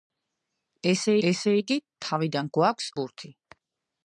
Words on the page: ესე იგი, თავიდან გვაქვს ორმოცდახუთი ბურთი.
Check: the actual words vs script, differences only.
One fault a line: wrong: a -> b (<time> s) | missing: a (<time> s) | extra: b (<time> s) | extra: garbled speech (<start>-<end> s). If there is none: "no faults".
extra: ესე (1.3 s)
missing: ორმოცდახუთი (2.9 s)